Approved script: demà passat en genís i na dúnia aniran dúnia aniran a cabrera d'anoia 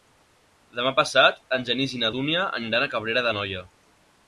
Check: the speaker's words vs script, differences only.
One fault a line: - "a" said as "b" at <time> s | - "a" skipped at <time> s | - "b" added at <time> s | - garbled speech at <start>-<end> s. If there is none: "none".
- "dúnia aniran" skipped at 2.9 s